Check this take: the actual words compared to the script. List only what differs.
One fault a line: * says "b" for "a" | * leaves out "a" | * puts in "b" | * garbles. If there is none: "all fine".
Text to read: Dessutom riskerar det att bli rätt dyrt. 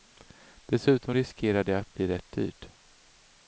all fine